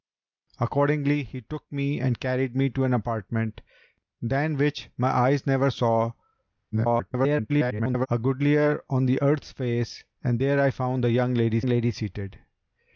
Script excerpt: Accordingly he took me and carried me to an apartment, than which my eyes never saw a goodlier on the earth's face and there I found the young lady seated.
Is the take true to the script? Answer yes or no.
no